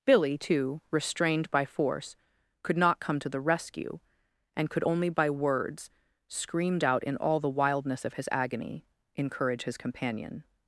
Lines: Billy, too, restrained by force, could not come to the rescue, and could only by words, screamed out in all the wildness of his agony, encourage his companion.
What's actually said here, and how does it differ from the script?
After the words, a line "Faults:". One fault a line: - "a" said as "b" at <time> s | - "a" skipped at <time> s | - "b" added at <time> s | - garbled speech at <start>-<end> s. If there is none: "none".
Billy, too, restrained by force, could not come to the rescue, and could only by words, screamed out in all the wildness of his agony, encourage his companion.
Faults:
none